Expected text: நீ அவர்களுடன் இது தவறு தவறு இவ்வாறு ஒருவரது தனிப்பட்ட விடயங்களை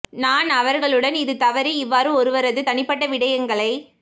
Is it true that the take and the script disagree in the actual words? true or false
true